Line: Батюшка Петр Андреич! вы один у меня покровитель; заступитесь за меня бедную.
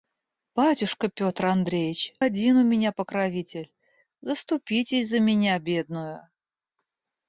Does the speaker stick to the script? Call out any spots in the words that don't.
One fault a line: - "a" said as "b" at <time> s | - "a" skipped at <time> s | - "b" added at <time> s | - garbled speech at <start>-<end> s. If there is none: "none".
- "вы" skipped at 2.1 s